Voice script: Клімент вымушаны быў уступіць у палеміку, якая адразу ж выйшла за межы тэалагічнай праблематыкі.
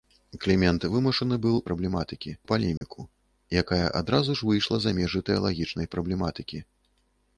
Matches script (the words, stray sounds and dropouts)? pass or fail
fail